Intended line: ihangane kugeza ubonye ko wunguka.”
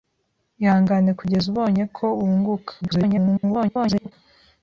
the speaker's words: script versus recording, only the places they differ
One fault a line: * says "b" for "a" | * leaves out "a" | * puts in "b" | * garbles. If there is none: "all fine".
* garbles